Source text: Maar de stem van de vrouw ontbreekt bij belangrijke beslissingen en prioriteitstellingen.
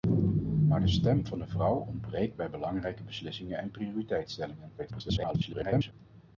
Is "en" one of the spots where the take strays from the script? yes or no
no